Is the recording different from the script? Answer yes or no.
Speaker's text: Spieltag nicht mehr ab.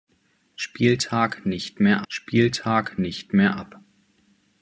yes